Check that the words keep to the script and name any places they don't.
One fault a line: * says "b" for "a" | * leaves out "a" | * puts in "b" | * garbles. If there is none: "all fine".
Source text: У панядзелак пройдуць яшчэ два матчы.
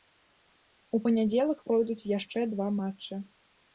all fine